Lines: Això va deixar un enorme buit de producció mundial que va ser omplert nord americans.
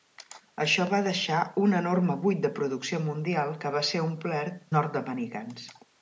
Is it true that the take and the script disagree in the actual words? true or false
false